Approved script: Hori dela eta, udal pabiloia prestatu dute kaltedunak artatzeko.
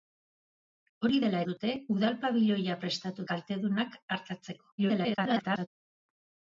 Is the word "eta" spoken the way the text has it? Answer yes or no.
no